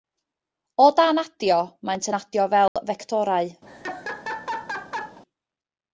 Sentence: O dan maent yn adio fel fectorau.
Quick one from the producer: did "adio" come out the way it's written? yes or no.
yes